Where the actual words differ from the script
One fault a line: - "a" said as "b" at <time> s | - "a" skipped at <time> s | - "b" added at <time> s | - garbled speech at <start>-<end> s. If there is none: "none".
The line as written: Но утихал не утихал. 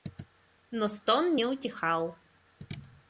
- "утихал" said as "стон" at 0.9 s